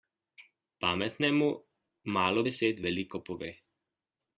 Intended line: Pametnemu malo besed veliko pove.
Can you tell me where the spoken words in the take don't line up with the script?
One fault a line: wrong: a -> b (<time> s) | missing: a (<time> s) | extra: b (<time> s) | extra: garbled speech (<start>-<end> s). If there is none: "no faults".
no faults